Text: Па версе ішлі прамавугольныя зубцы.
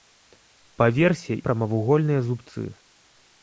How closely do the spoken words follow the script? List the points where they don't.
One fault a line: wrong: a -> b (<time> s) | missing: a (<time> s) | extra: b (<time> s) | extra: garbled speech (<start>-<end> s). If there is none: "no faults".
missing: ішлі (1.4 s)